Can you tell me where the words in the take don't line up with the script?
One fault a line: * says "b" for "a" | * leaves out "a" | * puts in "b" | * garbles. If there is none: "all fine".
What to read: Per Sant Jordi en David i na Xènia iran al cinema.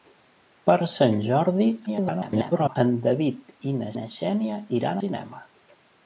* garbles
* puts in "na"
* leaves out "al"